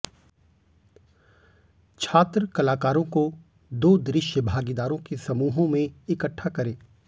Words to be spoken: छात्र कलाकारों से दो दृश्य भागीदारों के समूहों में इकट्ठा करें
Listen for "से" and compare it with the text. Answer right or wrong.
wrong